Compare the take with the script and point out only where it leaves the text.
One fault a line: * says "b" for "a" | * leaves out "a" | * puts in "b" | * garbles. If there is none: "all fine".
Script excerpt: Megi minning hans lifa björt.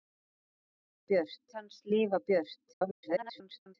* says "björt" for "minning"
* garbles